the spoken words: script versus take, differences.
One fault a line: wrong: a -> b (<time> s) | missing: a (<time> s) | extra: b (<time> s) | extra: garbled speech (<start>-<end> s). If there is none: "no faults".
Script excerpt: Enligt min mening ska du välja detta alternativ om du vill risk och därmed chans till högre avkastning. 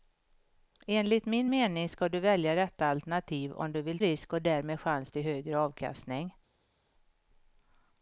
no faults